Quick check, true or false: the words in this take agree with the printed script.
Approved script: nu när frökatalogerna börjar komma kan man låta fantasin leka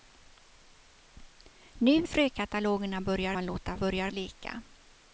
false